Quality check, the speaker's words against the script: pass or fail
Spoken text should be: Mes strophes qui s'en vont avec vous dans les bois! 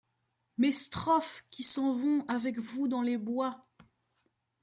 pass